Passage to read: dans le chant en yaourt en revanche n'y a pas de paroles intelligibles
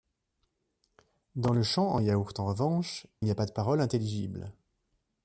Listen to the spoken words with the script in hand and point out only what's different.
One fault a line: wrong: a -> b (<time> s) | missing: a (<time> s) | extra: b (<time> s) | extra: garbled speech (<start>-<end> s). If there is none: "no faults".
no faults